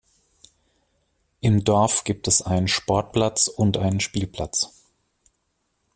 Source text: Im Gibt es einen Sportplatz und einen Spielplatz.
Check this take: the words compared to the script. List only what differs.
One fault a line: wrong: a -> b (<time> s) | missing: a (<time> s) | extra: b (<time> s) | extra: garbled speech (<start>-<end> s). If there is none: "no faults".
extra: Dorf (1.6 s)